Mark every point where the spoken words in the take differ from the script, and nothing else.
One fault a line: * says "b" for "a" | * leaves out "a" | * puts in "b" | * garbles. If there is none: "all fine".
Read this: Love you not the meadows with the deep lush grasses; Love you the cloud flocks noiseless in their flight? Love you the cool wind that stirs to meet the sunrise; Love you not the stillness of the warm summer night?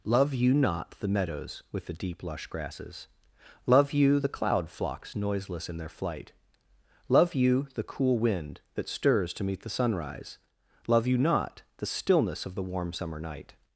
all fine